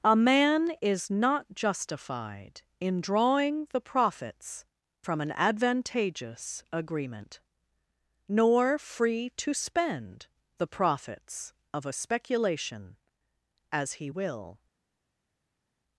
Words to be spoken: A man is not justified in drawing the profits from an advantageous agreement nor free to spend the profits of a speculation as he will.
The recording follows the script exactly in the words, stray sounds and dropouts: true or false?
true